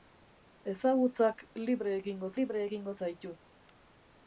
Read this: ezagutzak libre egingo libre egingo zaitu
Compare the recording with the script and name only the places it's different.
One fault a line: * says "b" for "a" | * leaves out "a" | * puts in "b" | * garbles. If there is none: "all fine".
all fine